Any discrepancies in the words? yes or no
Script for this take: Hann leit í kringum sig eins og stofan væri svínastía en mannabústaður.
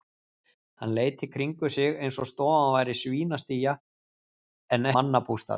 no